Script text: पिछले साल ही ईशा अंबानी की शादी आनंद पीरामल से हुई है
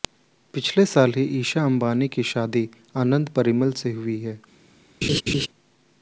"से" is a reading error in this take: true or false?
false